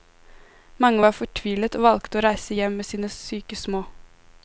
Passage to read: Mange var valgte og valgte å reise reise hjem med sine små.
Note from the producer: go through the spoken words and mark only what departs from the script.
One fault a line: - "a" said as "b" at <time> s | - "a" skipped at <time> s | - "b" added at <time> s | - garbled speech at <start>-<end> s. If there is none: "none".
- "valgte" said as "fortvilet" at 1.2 s
- "reise" skipped at 2.5 s
- "syke" added at 3.1 s